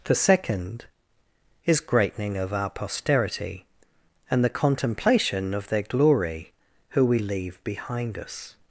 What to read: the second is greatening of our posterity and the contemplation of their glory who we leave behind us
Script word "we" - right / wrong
right